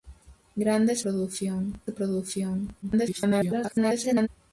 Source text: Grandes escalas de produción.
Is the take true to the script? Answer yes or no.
no